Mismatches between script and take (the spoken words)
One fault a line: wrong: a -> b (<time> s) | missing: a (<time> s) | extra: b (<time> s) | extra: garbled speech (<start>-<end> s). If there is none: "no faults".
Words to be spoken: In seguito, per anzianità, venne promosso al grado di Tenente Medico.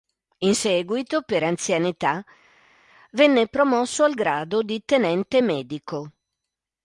no faults